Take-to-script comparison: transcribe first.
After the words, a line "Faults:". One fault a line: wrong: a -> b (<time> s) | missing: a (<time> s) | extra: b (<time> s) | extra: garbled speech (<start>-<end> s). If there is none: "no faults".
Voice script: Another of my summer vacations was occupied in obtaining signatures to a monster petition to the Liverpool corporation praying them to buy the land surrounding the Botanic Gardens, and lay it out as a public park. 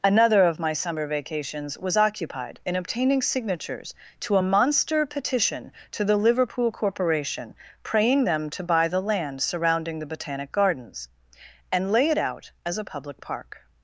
Another of my summer vacations was occupied in obtaining signatures to a monster petition to the Liverpool corporation praying them to buy the land surrounding the Botanic Gardens, and lay it out as a public park.
Faults:
no faults